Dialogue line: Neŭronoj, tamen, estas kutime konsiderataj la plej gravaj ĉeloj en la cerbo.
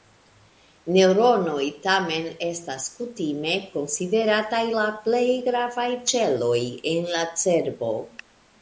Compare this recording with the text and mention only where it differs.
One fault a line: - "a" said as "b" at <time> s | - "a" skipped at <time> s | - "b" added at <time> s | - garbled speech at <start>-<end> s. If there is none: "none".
none